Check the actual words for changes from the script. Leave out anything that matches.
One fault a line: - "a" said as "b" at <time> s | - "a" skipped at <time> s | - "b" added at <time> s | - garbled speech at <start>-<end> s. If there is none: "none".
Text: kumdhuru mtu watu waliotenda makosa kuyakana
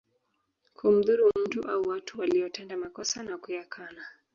- "au" added at 1.7 s
- "na" added at 3.2 s